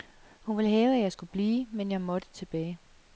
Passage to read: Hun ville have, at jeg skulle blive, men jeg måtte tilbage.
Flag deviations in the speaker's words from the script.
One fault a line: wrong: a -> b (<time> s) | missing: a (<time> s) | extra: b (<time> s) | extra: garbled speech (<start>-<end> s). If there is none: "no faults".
no faults